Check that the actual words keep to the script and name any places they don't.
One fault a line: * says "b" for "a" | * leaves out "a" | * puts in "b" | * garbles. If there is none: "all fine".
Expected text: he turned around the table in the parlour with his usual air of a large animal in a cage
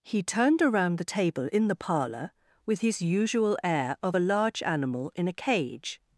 all fine